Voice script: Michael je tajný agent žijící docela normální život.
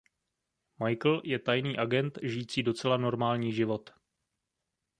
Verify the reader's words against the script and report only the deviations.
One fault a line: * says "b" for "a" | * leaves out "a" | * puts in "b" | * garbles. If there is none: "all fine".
all fine